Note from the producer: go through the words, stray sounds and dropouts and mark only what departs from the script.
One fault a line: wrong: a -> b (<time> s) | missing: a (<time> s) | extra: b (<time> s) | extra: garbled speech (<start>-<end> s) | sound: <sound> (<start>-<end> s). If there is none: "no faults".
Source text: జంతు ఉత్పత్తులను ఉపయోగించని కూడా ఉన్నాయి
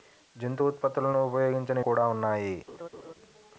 sound: laugh (2.7-3.1 s)